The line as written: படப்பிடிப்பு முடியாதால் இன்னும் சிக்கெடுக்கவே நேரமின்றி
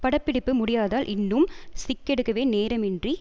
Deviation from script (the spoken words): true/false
false